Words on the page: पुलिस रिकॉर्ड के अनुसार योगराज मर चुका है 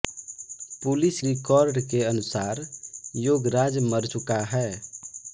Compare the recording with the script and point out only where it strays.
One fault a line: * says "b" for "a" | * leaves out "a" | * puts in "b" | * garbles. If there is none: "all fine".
all fine